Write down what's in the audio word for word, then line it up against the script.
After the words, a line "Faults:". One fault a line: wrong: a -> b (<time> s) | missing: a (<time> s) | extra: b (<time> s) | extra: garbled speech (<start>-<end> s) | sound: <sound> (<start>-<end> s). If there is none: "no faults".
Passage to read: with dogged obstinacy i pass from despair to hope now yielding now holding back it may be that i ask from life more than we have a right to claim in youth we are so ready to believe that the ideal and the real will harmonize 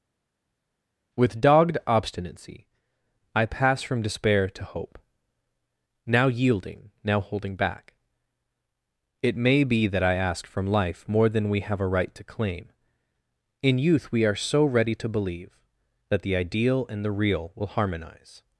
with dogged obstinacy i pass from despair to hope now yielding now holding back it may be that i ask from life more than we have a right to claim in youth we are so ready to believe that the ideal and the real will harmonize
Faults:
no faults